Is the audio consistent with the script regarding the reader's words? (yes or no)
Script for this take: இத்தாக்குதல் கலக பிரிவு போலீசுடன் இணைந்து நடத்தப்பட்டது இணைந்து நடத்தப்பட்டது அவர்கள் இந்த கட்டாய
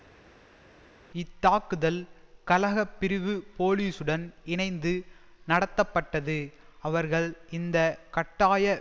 no